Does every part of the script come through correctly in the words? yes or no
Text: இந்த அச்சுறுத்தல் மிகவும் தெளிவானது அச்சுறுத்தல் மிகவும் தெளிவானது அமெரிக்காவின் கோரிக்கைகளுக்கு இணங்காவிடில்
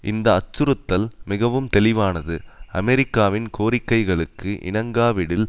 no